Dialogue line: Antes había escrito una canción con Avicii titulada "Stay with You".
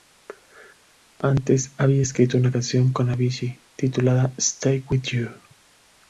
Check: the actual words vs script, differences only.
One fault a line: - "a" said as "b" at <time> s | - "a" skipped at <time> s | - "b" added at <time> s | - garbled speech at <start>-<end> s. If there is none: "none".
none